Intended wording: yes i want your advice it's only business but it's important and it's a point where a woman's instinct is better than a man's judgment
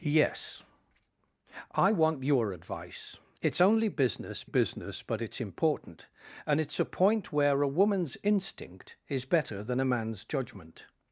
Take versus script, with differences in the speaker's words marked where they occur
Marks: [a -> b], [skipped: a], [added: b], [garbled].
yes i want your advice it's only business [added: business] but it's important and it's a point where a woman's instinct is better than a man's judgment